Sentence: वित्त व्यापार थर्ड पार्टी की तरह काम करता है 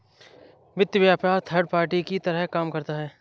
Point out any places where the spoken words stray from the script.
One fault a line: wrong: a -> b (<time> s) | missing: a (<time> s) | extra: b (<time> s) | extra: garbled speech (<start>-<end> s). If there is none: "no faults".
no faults